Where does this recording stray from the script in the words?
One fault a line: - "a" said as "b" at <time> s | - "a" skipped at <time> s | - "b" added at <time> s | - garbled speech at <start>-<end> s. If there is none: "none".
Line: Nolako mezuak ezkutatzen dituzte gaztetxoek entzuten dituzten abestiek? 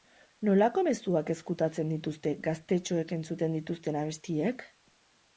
none